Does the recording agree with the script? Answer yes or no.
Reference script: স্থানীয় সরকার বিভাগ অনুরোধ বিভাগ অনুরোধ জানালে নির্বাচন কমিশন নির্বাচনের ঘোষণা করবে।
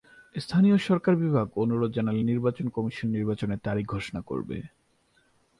no